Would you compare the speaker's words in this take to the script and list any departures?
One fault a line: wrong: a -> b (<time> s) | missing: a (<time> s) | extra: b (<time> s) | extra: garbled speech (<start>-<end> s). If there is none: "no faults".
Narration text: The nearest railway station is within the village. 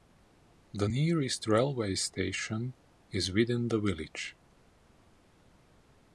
no faults